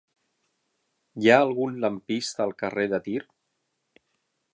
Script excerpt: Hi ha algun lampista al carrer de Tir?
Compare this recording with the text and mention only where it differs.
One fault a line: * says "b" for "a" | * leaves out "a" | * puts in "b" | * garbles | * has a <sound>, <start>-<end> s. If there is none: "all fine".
all fine